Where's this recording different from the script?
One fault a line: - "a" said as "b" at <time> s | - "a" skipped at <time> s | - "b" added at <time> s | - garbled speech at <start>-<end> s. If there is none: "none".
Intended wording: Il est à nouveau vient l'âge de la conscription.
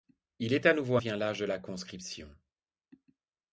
none